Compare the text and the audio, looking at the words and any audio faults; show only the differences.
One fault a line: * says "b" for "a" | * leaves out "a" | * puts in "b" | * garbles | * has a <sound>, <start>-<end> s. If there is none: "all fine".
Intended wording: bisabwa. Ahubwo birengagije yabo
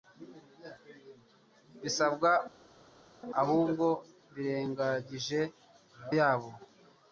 all fine